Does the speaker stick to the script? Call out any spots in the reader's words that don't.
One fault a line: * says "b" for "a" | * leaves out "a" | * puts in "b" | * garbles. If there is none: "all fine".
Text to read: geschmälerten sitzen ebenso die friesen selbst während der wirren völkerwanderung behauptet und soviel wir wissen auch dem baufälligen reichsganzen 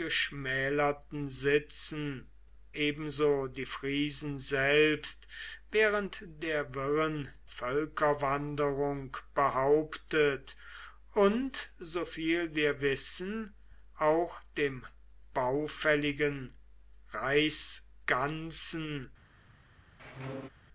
all fine